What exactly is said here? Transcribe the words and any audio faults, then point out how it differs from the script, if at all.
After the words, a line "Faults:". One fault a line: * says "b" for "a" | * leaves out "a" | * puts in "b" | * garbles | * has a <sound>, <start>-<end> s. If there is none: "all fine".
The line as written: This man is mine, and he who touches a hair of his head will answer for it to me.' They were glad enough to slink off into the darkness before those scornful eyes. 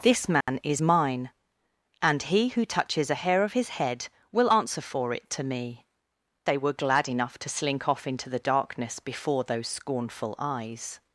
This man is mine, and he who touches a hair of his head will answer for it to me.' They were glad enough to slink off into the darkness before those scornful eyes.
Faults:
* has a dropout, 0.4-0.5 s